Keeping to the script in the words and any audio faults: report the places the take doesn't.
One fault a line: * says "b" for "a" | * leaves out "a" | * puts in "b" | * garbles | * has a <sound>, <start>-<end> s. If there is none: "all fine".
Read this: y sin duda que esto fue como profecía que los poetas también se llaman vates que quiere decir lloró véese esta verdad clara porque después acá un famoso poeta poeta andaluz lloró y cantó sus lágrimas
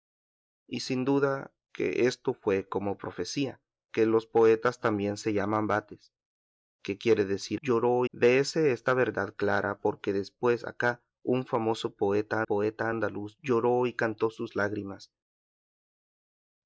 all fine